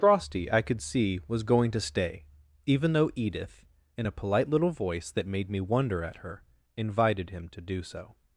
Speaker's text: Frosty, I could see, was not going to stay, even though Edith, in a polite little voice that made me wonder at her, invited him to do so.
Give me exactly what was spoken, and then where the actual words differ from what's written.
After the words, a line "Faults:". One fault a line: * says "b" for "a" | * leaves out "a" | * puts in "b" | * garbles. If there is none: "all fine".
Frosty, I could see, was going to stay, even though Edith, in a polite little voice that made me wonder at her, invited him to do so.
Faults:
* leaves out "not"